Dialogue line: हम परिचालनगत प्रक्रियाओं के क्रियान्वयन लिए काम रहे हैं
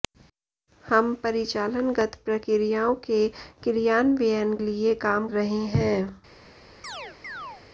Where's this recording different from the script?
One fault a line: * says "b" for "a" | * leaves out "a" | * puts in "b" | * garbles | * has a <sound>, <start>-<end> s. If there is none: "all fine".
* has a chirp, 6.8-7.6 s